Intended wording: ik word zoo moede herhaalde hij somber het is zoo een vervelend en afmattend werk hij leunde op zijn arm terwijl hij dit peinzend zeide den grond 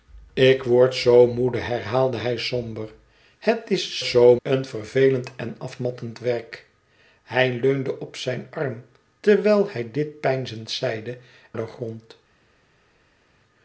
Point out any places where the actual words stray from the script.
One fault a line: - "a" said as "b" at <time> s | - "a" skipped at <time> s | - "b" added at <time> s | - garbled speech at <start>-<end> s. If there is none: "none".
none